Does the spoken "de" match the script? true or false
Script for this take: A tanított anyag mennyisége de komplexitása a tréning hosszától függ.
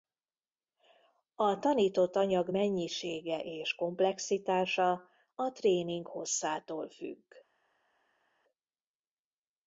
false